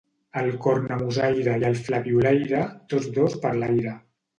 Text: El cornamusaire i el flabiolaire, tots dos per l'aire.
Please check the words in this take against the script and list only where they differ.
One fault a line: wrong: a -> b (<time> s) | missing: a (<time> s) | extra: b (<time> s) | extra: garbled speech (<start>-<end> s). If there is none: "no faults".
no faults